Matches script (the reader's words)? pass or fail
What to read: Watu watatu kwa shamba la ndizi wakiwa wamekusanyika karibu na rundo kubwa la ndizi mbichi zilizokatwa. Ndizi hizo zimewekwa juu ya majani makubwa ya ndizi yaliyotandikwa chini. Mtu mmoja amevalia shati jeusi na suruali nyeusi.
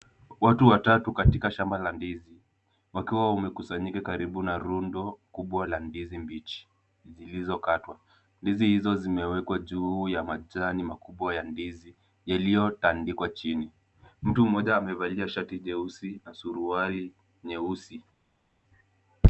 fail